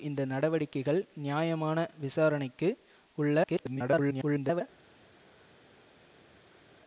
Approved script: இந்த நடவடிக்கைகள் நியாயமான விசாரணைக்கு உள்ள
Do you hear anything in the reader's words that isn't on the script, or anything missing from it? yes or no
yes